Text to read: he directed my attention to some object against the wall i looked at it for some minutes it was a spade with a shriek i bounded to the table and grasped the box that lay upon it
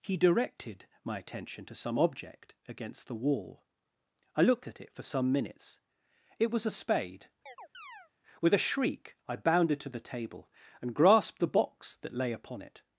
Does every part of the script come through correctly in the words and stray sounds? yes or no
no